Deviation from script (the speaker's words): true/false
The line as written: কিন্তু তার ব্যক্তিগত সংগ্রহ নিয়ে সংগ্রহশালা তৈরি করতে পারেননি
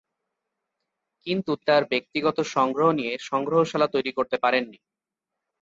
false